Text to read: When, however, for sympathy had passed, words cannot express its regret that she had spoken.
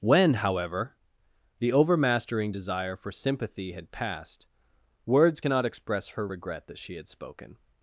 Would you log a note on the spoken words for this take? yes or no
yes